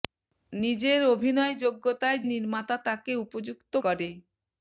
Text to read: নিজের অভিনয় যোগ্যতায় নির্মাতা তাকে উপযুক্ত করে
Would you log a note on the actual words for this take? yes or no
no